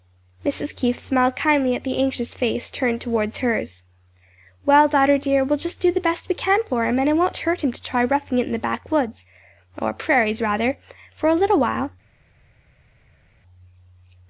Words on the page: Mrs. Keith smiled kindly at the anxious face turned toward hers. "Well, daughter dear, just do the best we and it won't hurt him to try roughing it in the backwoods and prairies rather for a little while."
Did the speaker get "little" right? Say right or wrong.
right